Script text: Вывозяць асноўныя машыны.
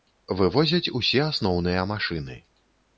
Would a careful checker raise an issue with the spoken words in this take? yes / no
yes